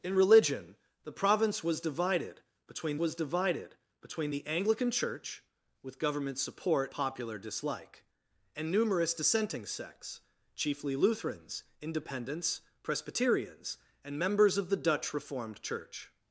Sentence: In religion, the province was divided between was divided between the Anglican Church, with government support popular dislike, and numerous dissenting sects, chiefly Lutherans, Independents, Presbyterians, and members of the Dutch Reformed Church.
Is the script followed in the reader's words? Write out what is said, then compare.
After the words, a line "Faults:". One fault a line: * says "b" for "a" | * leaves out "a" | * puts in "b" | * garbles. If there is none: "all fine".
In religion, the province was divided between was divided between the Anglican Church, with government support popular dislike, and numerous dissenting sects, chiefly Lutherans, Independents, Presbyterians, and members of the Dutch Reformed Church.
Faults:
all fine